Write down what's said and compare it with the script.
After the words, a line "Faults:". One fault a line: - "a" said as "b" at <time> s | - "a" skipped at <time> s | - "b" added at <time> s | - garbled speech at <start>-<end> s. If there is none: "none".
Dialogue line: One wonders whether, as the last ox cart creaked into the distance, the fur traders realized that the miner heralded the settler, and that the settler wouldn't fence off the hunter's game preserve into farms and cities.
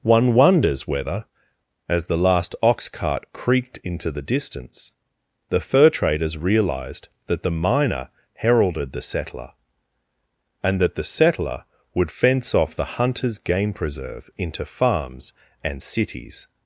One wonders whether, as the last ox cart creaked into the distance, the fur traders realized that the miner heralded the settler, and that the settler would fence off the hunter's game preserve into farms and cities.
Faults:
- "wouldn't" said as "would" at 11.9 s